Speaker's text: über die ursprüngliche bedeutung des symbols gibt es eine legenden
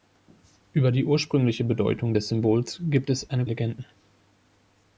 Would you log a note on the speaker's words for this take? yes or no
no